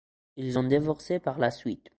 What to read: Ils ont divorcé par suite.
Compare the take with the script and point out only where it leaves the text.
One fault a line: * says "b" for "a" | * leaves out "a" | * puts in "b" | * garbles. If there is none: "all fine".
* puts in "la"